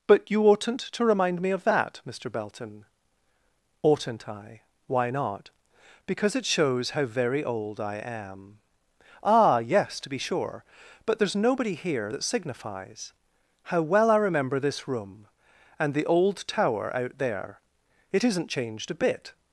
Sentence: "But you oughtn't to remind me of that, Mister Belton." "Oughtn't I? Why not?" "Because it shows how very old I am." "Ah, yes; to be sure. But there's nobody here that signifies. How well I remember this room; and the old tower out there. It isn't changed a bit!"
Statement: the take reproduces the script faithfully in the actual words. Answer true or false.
true